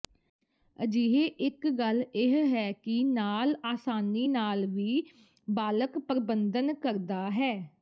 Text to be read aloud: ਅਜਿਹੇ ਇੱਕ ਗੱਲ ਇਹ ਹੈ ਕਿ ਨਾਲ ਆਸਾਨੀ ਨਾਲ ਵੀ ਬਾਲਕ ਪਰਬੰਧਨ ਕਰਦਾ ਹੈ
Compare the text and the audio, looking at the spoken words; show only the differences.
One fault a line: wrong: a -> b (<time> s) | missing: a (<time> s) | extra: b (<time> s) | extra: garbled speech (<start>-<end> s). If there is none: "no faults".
no faults